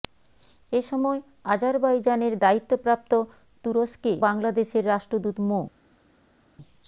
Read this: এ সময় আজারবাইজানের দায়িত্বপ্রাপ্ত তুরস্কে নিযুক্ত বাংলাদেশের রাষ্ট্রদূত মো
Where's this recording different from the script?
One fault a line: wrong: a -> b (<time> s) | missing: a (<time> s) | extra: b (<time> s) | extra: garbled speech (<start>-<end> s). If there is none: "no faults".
missing: নিযুক্ত (4.1 s)